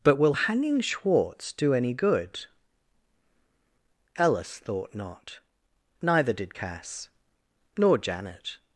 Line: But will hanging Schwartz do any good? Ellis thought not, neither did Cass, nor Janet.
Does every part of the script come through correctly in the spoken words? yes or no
yes